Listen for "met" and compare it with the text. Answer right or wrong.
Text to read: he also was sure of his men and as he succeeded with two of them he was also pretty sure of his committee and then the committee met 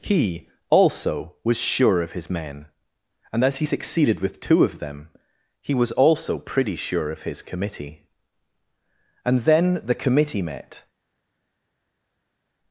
right